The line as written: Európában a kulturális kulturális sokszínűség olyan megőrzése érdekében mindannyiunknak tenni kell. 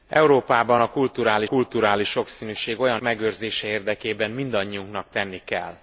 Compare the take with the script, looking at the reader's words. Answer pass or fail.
pass